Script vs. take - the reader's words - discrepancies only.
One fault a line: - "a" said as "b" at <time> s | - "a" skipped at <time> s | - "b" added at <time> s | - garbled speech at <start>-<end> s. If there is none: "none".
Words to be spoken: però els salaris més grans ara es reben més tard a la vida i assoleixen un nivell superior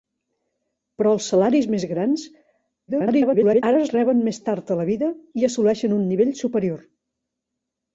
- garbled speech at 2.9-3.6 s